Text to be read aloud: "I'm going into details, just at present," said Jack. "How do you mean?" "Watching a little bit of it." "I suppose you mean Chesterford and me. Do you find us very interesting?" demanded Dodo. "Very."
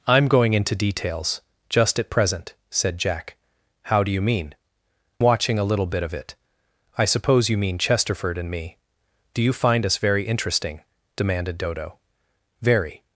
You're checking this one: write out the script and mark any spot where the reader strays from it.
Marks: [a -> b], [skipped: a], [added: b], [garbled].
"I'm going into details, just at present," said Jack. "How do you mean?" "Watching a little bit of it." "I suppose you mean Chesterford and me. Do you find us very interesting?" demanded Dodo. "Very."